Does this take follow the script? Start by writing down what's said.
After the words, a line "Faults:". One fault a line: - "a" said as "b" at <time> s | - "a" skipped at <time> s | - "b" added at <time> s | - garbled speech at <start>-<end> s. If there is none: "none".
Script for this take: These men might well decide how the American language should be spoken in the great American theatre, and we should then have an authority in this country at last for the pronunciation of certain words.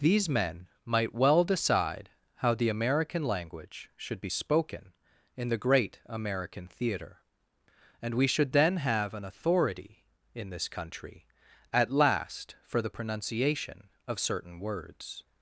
These men might well decide how the American language should be spoken in the great American theatre, and we should then have an authority in this country at last for the pronunciation of certain words.
Faults:
none